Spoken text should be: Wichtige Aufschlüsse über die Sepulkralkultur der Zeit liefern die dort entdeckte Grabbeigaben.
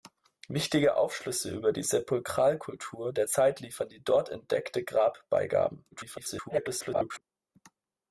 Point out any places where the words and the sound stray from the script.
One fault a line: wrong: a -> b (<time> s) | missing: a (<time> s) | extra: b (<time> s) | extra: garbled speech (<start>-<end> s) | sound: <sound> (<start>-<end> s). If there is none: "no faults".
extra: garbled speech (5.9-7.2 s)